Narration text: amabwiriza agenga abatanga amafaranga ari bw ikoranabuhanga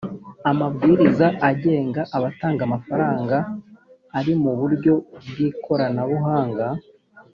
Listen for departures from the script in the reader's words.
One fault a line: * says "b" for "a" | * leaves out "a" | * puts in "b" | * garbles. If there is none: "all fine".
* puts in "mu buryo"